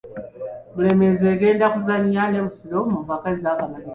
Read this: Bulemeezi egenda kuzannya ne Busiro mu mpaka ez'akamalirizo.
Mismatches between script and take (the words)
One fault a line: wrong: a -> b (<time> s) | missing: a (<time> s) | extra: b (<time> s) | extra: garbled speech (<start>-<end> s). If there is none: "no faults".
no faults